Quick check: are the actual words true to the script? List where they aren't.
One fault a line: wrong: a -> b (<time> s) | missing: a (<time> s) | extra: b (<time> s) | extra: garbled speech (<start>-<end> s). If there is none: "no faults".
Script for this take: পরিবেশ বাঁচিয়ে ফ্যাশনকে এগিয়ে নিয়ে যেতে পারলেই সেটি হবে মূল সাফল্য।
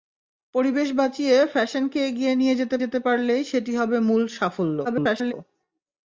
extra: যেতে (2.8 s)
extra: garbled speech (4.8-5.3 s)